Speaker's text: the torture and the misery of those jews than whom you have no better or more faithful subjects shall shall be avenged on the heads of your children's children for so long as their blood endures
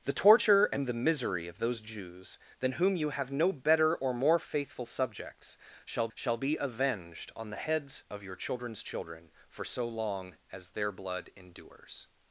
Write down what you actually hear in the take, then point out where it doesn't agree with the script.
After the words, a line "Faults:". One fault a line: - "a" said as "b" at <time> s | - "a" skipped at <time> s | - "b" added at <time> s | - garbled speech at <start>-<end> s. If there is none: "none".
the torture and the misery of those jews than whom you have no better or more faithful subjects shall shall be avenged on the heads of your children's children for so long as their blood endures
Faults:
none